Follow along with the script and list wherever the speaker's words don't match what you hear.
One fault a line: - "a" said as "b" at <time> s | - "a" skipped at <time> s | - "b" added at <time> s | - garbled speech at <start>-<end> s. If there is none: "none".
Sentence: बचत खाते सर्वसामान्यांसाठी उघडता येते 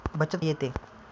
- "खाते सर्वसामान्यांसाठी उघडता" skipped at 0.4 s